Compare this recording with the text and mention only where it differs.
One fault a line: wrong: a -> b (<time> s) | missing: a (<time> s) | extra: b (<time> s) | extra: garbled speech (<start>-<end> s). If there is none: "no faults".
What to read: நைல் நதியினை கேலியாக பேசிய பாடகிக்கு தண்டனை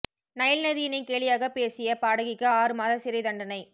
extra: ஆறு மாத சிறை (2.5 s)